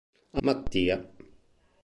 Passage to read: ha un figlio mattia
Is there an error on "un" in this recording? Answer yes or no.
yes